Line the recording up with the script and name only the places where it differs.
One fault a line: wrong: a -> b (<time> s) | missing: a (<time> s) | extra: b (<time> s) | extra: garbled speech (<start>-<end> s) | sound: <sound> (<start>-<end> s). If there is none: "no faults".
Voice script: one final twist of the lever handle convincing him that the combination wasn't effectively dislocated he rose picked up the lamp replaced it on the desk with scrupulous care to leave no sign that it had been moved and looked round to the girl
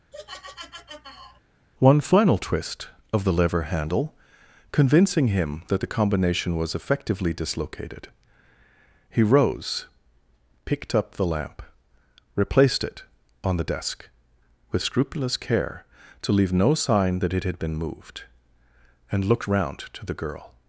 sound: laugh (0.1-1.4 s)
wrong: wasn't -> was (6.6 s)